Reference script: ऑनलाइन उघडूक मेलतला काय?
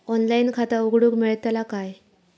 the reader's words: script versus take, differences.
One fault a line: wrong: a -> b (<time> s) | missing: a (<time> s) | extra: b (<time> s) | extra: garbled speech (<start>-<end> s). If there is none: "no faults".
extra: खाता (0.5 s)